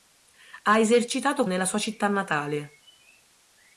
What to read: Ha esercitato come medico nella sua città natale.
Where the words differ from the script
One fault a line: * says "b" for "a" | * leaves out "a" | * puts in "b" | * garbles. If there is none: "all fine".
* leaves out "come medico"